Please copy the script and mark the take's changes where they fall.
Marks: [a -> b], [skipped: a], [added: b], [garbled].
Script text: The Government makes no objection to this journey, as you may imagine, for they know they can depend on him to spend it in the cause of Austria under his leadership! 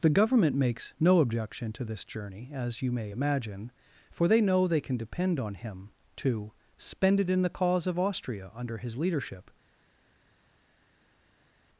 The Government makes no objection to this journey, as you may imagine, for they know they can depend on him to spend it in the cause of Austria under his leadership!